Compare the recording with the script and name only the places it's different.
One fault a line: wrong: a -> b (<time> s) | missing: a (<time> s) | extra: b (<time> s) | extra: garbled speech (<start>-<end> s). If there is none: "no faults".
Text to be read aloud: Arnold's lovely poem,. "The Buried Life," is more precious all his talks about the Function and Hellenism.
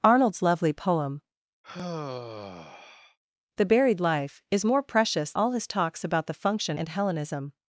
no faults